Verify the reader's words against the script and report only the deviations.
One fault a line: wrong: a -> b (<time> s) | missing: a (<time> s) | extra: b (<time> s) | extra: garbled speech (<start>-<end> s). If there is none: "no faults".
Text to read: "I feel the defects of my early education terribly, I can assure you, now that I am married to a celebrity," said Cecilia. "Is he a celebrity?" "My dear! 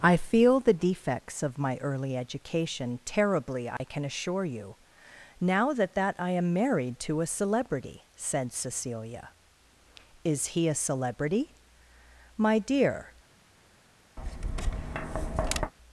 extra: that (5.9 s)